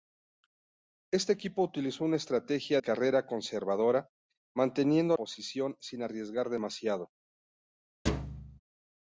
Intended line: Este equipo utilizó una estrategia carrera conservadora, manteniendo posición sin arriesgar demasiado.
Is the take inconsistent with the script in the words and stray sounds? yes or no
yes